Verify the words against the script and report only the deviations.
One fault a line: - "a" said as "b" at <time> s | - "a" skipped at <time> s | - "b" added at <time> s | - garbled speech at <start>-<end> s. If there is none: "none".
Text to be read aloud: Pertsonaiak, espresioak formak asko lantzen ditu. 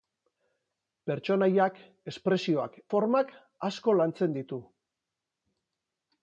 none